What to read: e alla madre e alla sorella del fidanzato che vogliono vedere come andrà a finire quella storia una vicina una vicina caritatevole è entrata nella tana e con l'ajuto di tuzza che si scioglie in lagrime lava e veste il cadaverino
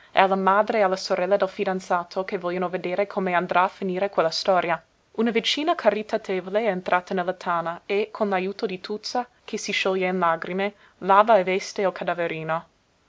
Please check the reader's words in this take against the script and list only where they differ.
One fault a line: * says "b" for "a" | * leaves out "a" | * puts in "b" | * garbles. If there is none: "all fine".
* leaves out "una vicina"